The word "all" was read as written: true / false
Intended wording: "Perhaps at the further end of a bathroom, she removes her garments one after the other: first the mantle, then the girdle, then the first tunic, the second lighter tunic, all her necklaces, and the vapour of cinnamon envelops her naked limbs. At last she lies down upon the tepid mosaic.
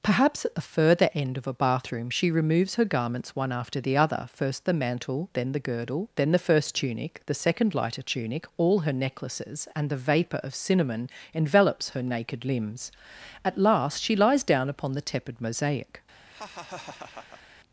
true